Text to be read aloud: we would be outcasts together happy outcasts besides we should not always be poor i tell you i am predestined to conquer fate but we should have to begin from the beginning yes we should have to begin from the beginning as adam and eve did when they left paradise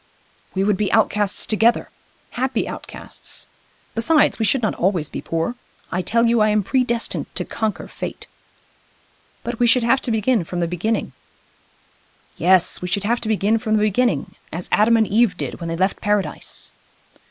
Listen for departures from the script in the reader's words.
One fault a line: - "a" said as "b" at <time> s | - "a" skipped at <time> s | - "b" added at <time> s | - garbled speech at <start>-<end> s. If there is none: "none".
none